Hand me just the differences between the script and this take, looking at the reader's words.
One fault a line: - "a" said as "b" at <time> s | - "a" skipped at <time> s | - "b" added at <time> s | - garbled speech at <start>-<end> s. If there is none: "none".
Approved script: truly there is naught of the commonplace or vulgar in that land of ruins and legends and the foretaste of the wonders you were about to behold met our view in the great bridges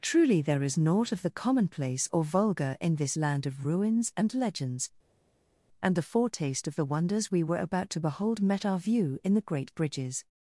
- "that" said as "this" at 3.0 s
- "you" said as "we" at 7.3 s